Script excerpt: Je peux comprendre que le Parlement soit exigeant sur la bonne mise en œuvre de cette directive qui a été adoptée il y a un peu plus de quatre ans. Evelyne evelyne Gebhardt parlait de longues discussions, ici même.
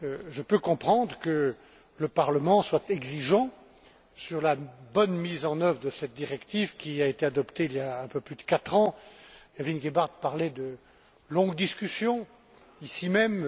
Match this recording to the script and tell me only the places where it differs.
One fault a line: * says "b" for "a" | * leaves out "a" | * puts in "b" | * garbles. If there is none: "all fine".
* leaves out "evelyne"